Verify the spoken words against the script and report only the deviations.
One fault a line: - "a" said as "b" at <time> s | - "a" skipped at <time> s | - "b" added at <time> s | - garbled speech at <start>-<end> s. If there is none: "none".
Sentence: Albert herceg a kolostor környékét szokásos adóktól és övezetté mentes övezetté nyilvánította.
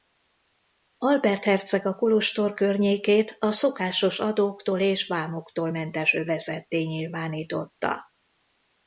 - "a" added at 3.4 s
- "övezetté" said as "vámoktól" at 5.1 s